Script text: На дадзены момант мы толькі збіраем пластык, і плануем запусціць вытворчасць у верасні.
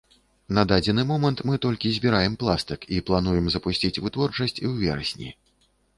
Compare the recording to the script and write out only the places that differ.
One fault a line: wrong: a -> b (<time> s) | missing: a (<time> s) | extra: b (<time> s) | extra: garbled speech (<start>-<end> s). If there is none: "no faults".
no faults